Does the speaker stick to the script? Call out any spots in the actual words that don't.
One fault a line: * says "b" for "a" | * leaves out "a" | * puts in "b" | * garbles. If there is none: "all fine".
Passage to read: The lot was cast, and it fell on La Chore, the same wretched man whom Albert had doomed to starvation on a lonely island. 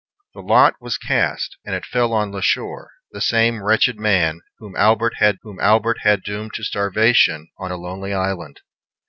* puts in "whom Albert had"